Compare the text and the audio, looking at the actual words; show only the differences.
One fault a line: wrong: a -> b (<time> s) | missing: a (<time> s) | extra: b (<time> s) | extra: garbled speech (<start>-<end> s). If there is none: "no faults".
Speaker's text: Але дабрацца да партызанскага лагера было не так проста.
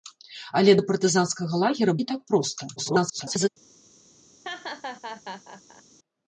missing: дабрацца (0.7 s)
missing: было (1.9 s)
extra: garbled speech (2.8-3.5 s)